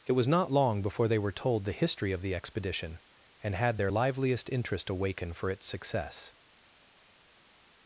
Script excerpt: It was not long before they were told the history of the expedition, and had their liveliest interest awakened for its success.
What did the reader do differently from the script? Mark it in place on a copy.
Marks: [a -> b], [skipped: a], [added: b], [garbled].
It was not long before they were told the history of the expedition, and had their liveliest interest [awakened -> awaken] for its success.